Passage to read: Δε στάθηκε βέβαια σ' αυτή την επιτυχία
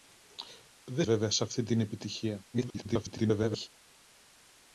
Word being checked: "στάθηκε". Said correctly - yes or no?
no